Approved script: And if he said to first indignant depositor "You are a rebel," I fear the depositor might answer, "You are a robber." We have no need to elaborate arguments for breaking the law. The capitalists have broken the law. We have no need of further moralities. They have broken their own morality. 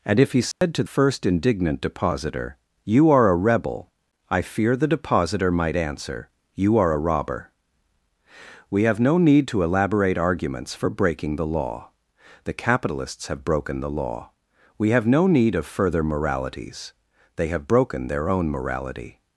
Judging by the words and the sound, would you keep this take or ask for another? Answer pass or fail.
fail